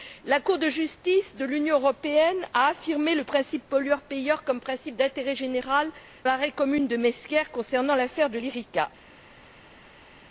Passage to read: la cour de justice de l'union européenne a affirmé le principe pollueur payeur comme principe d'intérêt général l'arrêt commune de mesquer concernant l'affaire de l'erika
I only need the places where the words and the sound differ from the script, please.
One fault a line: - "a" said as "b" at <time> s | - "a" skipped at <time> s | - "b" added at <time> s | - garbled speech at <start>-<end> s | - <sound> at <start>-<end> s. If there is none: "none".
none